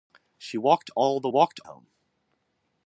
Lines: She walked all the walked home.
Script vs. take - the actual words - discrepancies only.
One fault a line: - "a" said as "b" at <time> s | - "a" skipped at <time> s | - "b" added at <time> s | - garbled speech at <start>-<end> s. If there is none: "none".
none